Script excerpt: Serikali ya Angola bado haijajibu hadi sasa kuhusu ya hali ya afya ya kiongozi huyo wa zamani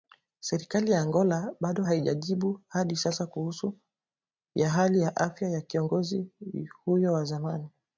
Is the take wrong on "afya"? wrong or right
right